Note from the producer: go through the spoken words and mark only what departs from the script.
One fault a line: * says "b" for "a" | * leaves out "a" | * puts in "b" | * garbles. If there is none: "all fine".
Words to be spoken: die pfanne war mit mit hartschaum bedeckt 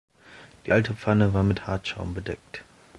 * puts in "alte"
* leaves out "mit"